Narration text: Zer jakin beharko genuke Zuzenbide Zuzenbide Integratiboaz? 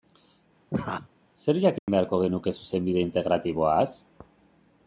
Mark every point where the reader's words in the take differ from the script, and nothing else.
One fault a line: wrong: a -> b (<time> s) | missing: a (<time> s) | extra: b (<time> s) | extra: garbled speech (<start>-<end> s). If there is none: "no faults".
missing: Zuzenbide (3.1 s)